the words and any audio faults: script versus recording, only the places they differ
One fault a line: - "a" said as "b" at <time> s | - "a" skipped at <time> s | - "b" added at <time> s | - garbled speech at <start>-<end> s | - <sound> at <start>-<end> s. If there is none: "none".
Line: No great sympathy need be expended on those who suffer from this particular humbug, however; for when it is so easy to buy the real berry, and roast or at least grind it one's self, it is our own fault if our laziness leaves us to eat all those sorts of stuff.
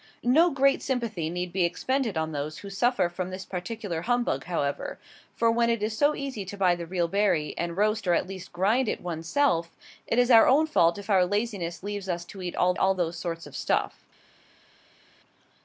- "all" added at 12.8 s